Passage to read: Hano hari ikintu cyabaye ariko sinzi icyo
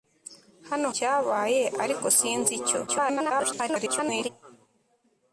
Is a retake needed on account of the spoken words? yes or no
yes